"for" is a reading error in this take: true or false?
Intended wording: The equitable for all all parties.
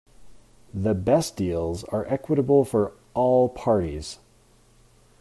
false